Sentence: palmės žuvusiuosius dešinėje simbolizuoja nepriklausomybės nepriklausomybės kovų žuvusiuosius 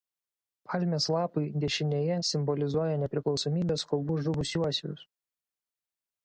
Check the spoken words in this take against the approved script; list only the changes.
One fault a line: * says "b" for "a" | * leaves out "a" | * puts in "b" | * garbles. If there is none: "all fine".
* says "lapai" for "žuvusiuosius"
* leaves out "nepriklausomybės"